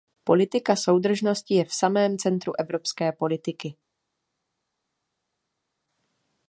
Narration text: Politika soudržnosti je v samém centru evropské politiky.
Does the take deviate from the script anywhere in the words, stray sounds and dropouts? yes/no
no